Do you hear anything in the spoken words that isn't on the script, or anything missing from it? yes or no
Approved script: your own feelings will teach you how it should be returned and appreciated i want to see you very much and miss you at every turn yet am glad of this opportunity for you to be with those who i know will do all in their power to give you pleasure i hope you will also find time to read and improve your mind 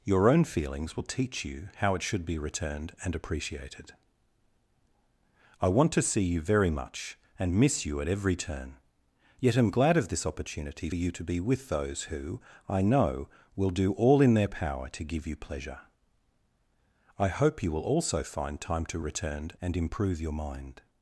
yes